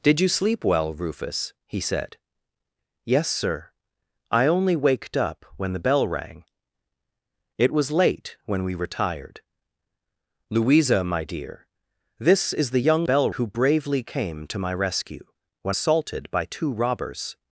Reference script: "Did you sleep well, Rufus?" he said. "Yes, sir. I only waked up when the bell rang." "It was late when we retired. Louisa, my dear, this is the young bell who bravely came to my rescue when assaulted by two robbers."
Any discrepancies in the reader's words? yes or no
no